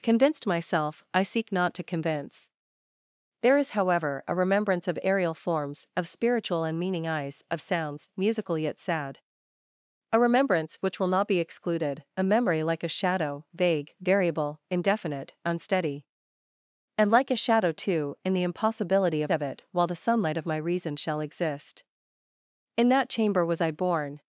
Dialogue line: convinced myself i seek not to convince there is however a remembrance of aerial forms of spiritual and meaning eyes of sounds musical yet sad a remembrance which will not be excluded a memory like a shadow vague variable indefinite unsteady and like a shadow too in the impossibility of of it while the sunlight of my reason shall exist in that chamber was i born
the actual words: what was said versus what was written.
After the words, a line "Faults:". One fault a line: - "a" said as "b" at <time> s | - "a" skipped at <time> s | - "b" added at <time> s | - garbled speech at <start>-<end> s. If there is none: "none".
convinced myself i seek not to convince there is however a remembrance of aerial forms of spiritual and meaning eyes of sounds musical yet sad a remembrance which will not be excluded a memory like a shadow vague variable indefinite unsteady and like a shadow too in the impossibility of of it while the sunlight of my reason shall exist in that chamber was i born
Faults:
none